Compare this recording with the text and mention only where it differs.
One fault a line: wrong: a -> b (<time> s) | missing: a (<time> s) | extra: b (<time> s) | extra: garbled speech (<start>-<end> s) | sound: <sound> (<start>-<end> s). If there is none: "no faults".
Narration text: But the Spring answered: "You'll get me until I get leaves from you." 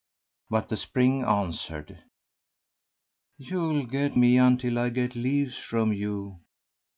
no faults